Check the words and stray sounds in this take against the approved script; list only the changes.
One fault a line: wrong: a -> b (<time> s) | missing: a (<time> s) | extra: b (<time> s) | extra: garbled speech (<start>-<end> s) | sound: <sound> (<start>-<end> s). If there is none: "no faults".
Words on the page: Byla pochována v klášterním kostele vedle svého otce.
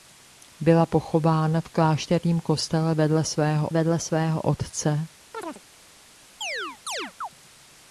extra: vedle svého (3.7 s)
sound: chirp (5.3-5.6 s)
sound: chirp (6.4-7.3 s)